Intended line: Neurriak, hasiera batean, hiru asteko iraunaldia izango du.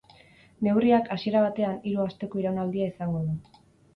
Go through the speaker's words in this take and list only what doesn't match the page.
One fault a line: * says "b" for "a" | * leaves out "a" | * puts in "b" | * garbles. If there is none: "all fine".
all fine